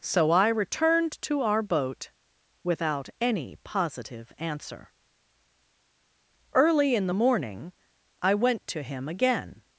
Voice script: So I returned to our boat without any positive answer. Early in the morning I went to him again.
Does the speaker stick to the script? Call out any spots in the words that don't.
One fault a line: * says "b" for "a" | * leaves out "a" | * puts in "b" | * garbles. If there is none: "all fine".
all fine